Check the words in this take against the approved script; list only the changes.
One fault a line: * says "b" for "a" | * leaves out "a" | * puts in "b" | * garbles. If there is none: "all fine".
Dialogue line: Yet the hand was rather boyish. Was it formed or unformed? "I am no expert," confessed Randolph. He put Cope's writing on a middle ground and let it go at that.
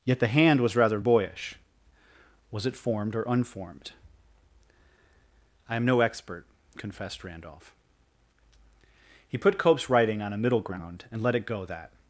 * leaves out "at"